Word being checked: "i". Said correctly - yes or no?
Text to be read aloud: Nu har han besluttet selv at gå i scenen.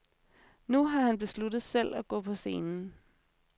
no